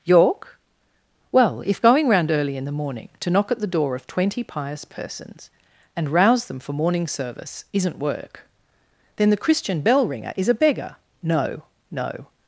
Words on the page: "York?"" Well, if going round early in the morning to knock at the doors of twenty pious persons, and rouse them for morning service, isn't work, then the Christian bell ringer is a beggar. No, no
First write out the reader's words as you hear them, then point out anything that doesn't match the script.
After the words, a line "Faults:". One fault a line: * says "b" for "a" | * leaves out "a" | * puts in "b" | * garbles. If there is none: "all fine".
"York?"" Well, if going round early in the morning to knock at the door of twenty pious persons, and rouse them for morning service, isn't work, then the Christian bell ringer is a beggar. No, no
Faults:
* says "door" for "doors"